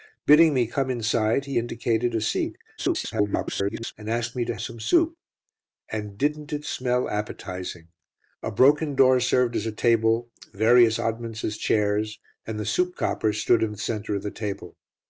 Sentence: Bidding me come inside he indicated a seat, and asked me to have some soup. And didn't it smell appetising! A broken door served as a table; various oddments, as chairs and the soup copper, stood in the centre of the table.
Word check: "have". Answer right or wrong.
wrong